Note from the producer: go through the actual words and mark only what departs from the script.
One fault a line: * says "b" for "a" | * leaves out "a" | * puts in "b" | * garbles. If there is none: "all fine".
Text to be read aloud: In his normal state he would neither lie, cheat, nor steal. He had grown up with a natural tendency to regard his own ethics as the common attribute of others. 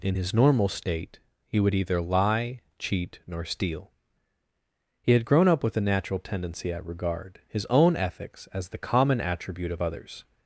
* says "either" for "neither"
* says "at" for "to"